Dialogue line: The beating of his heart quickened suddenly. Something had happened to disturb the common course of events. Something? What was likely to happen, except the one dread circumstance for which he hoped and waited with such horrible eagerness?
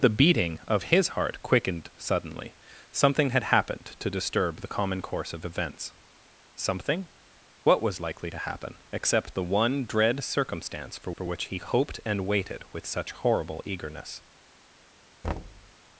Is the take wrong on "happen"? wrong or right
right